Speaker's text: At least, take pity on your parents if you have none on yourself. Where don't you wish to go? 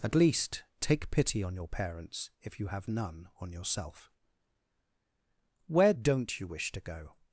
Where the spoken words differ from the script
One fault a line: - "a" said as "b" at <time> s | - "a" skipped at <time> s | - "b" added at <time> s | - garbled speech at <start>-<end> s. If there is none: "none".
none